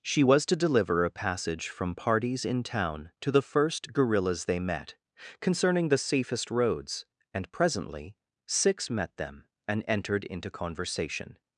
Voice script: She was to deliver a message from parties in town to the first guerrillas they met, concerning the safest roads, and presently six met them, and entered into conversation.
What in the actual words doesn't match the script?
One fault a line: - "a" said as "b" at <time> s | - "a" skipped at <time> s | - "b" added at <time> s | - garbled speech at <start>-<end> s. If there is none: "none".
- "message" said as "passage" at 1.1 s